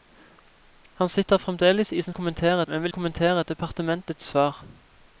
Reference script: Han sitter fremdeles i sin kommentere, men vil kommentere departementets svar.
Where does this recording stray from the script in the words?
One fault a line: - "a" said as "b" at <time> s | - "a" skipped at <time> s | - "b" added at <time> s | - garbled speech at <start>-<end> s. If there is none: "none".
none